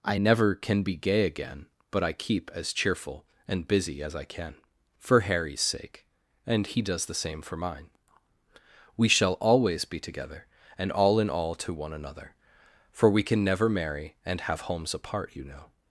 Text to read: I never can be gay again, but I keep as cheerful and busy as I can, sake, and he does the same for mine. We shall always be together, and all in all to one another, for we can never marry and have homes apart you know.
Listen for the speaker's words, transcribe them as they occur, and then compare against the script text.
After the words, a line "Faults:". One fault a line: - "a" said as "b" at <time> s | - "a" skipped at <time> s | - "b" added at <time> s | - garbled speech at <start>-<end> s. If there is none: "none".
I never can be gay again, but I keep as cheerful and busy as I can, for Harry's sake, and he does the same for mine. We shall always be together, and all in all to one another, for we can never marry and have homes apart you know.
Faults:
- "for Harry's" added at 5.0 s